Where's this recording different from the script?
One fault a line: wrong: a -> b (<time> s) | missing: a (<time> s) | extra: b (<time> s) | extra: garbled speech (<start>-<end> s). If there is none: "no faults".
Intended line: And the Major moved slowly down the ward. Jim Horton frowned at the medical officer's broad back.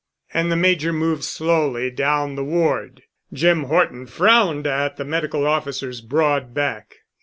no faults